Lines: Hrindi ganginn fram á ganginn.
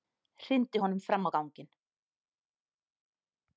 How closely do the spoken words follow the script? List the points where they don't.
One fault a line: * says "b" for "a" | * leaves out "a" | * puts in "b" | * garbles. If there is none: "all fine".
* says "honum" for "ganginn"